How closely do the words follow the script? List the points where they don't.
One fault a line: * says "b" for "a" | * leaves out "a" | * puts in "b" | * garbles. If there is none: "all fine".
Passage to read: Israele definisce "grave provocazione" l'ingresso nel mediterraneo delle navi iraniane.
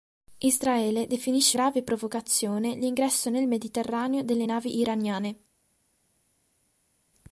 all fine